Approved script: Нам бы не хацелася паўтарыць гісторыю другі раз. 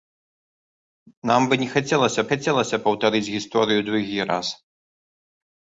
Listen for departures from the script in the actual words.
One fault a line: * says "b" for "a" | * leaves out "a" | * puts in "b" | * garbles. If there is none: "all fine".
* puts in "хацелася"